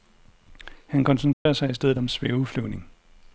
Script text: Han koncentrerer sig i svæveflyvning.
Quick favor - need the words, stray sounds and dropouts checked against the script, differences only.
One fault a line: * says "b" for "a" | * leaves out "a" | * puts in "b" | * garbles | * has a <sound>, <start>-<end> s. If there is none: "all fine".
* has a dropout, 1.3-1.5 s
* puts in "stedet om"